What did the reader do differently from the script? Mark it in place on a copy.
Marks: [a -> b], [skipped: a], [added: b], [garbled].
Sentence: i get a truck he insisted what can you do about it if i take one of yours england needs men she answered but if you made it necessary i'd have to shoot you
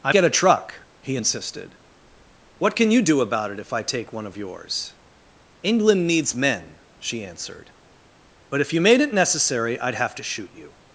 i get a truck he insisted what can you do about it if i take one of yours england needs men she answered but if you made it necessary i'd have to shoot you